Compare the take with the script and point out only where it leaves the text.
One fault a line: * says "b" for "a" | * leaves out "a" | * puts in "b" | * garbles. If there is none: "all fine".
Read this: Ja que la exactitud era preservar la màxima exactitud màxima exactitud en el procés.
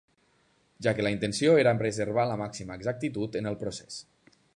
* says "intenció" for "exactitud"
* leaves out "màxima exactitud"